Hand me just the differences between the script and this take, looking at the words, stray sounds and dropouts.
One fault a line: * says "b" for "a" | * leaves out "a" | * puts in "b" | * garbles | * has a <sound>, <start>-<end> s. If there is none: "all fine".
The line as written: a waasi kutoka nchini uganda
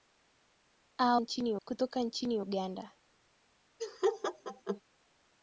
* says "nchini" for "waasi"
* has a laugh, 3.8-4.8 s